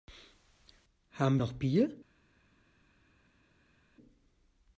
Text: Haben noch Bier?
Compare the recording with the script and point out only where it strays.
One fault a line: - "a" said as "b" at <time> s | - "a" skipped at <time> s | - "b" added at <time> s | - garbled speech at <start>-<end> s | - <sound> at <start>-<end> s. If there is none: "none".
none